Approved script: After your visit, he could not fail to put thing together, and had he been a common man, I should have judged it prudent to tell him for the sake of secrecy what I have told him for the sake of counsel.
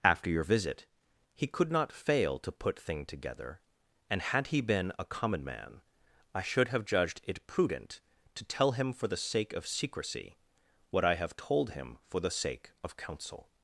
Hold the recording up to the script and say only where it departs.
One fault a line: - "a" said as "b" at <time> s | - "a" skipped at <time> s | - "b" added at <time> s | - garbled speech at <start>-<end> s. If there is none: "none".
none